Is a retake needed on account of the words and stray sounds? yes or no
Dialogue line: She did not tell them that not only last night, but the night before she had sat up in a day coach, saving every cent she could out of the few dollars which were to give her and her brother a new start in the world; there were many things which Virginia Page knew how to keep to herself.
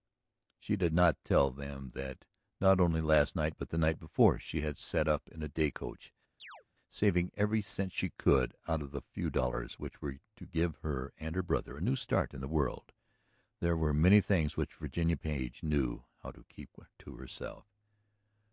yes